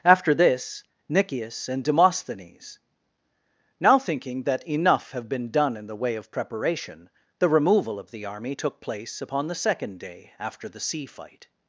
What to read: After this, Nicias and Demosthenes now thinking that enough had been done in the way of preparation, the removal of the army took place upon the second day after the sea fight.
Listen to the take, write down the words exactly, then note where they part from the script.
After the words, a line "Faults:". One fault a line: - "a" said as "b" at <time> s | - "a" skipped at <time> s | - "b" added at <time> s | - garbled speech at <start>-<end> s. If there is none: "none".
After this, Nicias and Demosthenes now thinking that enough have been done in the way of preparation, the removal of the army took place upon the second day after the sea fight.
Faults:
- "had" said as "have" at 5.1 s